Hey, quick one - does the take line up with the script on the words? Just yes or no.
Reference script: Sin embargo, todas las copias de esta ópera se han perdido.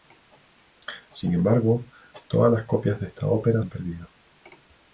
no